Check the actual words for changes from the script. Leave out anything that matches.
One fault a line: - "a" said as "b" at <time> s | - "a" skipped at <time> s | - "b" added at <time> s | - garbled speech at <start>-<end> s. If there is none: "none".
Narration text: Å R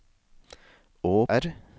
none